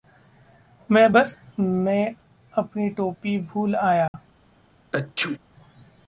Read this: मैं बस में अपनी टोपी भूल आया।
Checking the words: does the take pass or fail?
pass